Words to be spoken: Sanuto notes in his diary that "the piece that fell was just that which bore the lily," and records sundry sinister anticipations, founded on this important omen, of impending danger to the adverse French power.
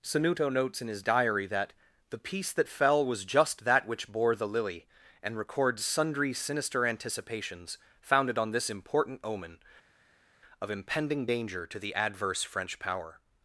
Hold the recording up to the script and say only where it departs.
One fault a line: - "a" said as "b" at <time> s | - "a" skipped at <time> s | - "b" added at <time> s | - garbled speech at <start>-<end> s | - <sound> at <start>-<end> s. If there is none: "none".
none